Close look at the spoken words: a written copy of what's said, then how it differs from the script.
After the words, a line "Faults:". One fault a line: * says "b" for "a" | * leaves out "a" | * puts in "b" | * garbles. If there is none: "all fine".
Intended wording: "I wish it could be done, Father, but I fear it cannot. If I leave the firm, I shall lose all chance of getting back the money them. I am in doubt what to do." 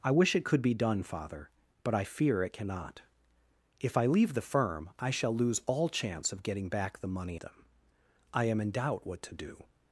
"I wish it could be done, Father, but I fear it cannot. If I leave the firm, I shall lose all chance of getting back the money them. I am in doubt what to do."
Faults:
all fine